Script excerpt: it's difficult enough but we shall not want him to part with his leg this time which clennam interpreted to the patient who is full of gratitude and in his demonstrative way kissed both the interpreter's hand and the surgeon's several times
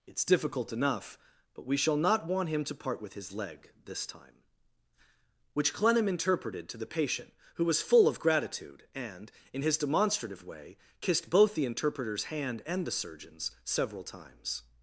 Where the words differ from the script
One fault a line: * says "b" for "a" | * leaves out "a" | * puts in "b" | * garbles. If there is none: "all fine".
* says "was" for "is"